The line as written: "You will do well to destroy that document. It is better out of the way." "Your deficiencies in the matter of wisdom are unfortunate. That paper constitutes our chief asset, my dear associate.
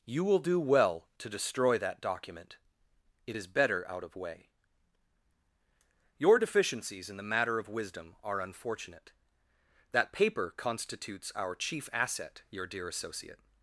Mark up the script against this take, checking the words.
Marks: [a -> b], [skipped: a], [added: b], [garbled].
"You will do well to destroy that document. It is better out of [skipped: the] way." "Your deficiencies in the matter of wisdom are unfortunate. That paper constitutes our chief asset, [my -> your] dear associate.